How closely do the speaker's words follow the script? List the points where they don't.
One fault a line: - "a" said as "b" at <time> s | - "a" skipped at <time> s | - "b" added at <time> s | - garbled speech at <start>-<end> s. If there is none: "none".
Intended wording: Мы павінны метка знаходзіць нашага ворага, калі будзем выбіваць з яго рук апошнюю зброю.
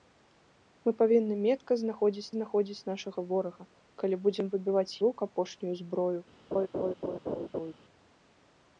- "знаходзіць" added at 2.3 s
- "яго" skipped at 5.0 s